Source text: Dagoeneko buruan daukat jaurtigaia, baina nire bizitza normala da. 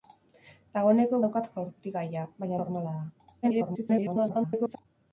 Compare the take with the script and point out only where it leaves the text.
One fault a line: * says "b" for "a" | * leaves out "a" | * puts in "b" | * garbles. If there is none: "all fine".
* leaves out "buruan"
* leaves out "nire bizitza"
* garbles